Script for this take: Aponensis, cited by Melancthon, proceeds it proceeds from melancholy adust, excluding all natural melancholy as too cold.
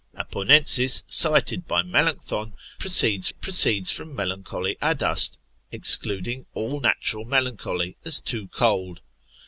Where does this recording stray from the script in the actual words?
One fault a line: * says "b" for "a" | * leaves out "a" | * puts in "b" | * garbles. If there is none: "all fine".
all fine